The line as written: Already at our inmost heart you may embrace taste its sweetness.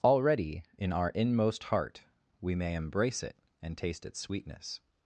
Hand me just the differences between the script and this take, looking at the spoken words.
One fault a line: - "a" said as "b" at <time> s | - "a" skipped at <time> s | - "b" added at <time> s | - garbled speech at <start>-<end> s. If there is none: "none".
- "at" said as "in" at 0.8 s
- "you" said as "we" at 2.4 s
- "it and" added at 3.2 s